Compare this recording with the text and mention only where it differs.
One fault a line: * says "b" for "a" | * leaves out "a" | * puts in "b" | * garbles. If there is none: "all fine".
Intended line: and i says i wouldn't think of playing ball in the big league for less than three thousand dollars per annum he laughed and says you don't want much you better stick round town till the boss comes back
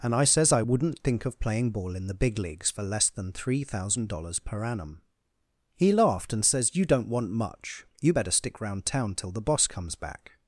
* says "leagues" for "league"